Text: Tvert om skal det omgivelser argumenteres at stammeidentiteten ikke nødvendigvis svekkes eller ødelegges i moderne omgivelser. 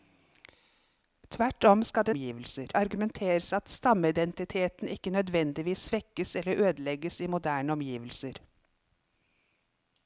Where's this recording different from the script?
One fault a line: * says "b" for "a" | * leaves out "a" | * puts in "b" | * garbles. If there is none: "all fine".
all fine